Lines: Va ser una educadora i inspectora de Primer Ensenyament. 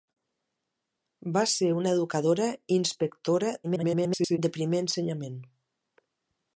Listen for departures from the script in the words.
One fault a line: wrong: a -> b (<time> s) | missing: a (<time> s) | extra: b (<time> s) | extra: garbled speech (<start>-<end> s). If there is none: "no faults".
extra: garbled speech (3.6-4.4 s)